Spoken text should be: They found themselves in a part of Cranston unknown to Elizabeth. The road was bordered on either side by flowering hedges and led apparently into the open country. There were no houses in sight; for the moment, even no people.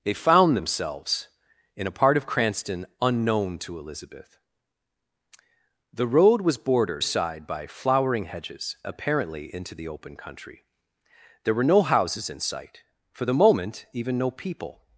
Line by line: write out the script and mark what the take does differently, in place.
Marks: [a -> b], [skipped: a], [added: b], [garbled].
They found themselves in a part of Cranston unknown to Elizabeth. The road was bordered [skipped: on either] side by flowering hedges [skipped: and led] apparently into the open country. There were no houses in sight; for the moment, even no people.